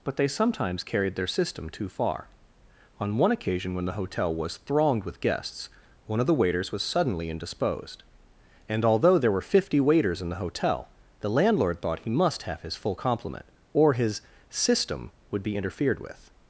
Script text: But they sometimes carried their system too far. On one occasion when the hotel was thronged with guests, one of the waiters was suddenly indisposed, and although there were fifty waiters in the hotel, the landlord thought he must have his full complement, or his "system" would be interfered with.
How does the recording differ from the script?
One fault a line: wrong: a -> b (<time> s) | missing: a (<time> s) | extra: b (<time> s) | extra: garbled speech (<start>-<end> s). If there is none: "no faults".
no faults